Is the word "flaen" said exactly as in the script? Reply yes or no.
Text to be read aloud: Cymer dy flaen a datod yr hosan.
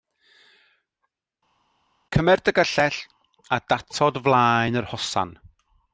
no